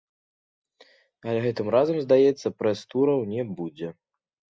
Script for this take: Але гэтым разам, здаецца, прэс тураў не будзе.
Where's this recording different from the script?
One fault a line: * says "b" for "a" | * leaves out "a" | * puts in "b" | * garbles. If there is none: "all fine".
all fine